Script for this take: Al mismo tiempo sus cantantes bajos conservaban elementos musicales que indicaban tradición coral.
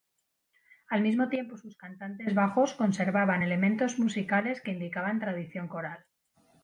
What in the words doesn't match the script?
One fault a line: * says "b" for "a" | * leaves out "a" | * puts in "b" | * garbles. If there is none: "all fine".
all fine